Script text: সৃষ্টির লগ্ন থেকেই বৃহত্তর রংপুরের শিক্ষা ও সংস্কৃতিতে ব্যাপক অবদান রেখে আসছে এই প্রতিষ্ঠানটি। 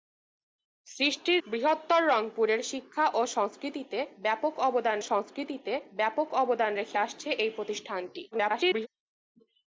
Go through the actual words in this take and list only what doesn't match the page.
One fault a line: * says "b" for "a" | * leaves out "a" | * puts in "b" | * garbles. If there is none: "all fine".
* leaves out "লগ্ন থেকেই"
* puts in "সংস্কৃতিতে ব্যাপক অবদান"
* garbles